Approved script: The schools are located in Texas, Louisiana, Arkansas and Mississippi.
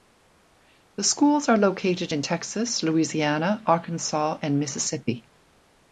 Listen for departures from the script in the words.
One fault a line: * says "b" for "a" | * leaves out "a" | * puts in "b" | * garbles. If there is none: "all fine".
all fine